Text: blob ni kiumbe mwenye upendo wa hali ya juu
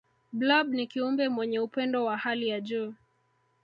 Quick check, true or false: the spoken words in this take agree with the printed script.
true